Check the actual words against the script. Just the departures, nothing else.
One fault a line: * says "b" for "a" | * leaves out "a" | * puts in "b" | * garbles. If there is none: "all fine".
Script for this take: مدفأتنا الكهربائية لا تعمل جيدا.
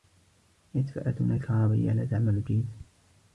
all fine